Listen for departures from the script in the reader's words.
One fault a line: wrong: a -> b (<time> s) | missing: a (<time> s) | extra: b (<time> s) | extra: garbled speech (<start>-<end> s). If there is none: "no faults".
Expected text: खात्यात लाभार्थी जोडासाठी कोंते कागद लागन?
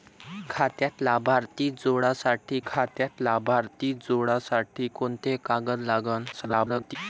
extra: खात्यात लाभार्थी जोडासाठी (2.7 s)
extra: garbled speech (6.3-7.0 s)